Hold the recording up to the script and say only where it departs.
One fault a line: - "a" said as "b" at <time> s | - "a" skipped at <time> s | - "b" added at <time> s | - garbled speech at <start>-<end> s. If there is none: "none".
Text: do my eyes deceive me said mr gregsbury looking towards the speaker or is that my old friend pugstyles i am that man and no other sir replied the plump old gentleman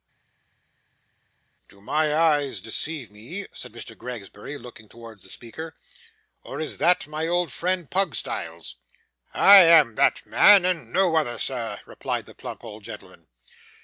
none